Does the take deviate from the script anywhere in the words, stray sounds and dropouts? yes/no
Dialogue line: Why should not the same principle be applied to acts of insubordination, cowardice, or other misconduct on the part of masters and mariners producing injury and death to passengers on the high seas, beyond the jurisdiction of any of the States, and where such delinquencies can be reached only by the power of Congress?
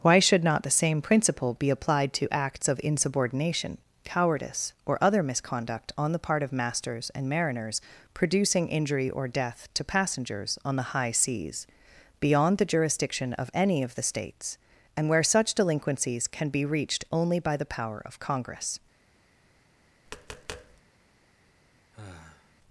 yes